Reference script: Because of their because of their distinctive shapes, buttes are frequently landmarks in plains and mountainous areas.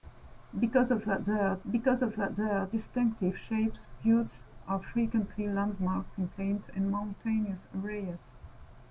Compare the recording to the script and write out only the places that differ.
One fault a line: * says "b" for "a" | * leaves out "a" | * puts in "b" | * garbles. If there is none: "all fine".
all fine